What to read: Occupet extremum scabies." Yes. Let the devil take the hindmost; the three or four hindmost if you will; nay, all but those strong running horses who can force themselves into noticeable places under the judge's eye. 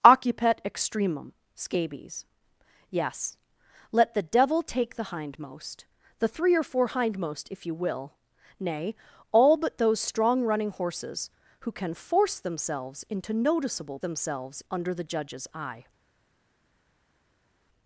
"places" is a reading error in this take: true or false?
true